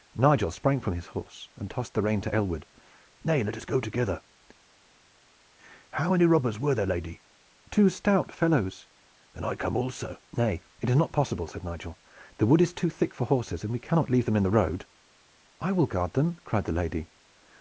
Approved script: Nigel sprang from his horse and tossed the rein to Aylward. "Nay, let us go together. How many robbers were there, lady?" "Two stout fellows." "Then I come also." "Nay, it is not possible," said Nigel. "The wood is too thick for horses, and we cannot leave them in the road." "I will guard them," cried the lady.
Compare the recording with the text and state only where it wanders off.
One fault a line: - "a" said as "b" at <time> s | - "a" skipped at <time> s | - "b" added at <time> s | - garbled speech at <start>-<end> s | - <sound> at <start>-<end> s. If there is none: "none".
none